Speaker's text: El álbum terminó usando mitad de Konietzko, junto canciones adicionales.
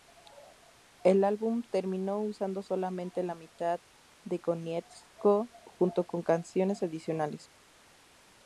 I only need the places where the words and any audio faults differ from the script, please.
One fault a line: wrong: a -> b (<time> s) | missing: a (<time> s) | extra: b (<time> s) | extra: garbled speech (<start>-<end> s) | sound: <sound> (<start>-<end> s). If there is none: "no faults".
extra: solamente la (2.6 s)
extra: con (6.1 s)